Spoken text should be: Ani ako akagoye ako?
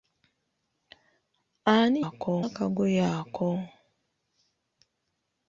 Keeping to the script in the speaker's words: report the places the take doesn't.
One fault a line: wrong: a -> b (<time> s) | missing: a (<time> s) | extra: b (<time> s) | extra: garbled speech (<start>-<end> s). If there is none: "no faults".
no faults